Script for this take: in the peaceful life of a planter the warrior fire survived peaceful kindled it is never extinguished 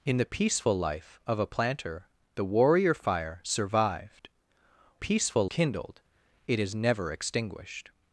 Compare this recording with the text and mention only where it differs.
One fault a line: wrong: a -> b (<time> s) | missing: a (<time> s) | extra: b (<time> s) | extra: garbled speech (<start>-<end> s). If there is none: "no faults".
no faults